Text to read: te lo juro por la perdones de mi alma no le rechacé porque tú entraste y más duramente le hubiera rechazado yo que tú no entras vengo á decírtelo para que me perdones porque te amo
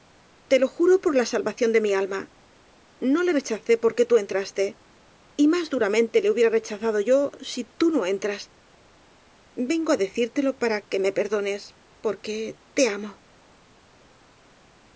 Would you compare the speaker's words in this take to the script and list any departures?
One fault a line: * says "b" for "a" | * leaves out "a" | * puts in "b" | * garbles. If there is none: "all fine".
* says "salvación" for "perdones"
* says "si" for "que"